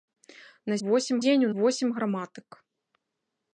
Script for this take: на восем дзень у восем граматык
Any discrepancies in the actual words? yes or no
no